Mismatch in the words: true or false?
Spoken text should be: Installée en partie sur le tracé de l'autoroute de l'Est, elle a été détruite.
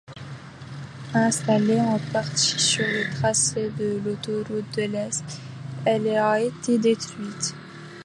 false